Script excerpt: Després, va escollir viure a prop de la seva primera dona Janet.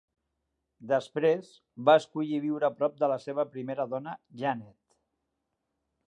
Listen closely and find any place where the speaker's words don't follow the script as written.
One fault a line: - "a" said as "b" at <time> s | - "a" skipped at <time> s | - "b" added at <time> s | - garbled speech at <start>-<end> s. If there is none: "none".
none